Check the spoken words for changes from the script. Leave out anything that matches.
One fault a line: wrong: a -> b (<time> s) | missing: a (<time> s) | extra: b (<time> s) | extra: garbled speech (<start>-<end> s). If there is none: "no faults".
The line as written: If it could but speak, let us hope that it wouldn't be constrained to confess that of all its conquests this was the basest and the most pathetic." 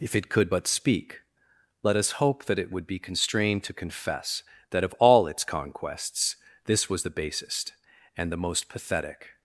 wrong: wouldn't -> would (2.7 s)